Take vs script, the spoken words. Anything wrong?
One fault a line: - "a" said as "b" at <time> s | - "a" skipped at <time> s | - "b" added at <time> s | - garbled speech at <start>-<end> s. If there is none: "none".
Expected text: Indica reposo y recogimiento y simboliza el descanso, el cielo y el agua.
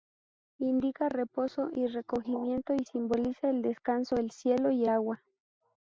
- "el" skipped at 4.8 s